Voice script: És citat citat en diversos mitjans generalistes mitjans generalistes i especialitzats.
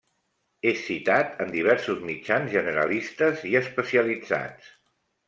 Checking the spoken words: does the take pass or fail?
fail